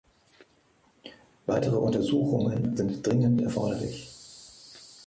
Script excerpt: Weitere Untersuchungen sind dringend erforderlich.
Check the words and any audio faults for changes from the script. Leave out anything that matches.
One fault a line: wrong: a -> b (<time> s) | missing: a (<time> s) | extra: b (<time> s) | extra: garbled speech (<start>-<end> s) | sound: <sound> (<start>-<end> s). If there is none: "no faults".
no faults